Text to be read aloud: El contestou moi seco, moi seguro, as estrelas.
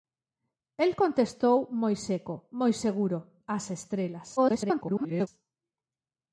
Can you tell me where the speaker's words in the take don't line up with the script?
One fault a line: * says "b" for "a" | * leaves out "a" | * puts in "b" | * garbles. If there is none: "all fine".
* garbles